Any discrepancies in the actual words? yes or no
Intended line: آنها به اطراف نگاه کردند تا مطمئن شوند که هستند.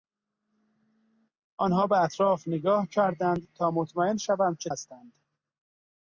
no